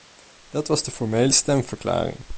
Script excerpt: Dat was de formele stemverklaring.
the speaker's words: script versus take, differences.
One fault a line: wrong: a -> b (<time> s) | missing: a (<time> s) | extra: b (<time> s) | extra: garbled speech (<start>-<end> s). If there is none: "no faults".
no faults